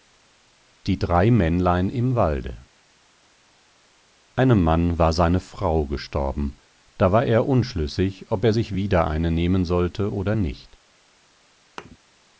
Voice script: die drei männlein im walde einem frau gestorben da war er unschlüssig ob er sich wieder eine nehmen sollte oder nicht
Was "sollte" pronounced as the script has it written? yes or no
yes